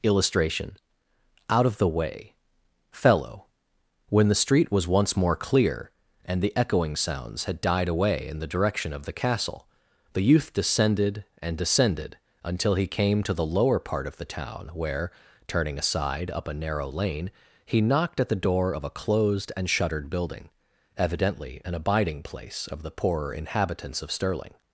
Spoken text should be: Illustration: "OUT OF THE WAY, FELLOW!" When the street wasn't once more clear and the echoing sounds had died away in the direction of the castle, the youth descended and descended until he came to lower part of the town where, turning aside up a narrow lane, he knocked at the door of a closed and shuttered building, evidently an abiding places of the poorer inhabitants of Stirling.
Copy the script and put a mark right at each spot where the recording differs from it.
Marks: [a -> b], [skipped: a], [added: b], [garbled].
Illustration: "OUT OF THE WAY, FELLOW!" When the street [wasn't -> was] once more clear and the echoing sounds had died away in the direction of the castle, the youth descended and descended until he came to [added: the] lower part of the town where, turning aside up a narrow lane, he knocked at the door of a closed and shuttered building, evidently an abiding [places -> place] of the poorer inhabitants of Stirling.